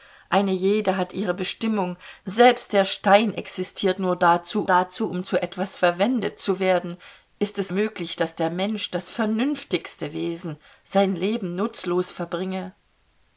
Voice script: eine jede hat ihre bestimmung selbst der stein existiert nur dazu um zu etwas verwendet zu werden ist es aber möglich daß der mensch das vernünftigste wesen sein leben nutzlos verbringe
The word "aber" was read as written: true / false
false